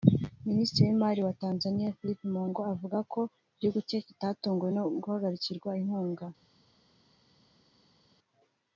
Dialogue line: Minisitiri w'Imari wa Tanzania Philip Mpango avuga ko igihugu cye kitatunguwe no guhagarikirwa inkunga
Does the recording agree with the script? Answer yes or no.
yes